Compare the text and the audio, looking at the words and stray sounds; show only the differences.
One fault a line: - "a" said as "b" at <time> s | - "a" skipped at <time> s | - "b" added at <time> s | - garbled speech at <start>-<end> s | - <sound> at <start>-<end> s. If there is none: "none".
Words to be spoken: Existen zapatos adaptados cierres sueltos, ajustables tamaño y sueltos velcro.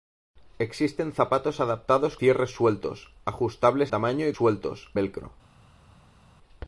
none